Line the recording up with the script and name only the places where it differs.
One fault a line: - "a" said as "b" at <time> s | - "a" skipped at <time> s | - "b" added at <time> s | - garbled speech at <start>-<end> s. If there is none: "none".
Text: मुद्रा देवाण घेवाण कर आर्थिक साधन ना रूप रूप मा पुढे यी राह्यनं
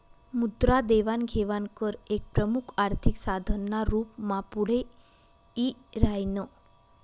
- "एक प्रमुख" added at 2.1 s
- "रूप" skipped at 4.2 s